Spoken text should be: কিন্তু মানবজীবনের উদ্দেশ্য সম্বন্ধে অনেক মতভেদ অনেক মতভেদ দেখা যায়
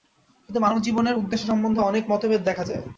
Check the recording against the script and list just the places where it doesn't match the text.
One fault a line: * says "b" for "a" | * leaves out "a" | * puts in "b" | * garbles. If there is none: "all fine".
* leaves out "অনেক মতভেদ"